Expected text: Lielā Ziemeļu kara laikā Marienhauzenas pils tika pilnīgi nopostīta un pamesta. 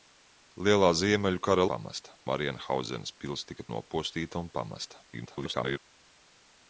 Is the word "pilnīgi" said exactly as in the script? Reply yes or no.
no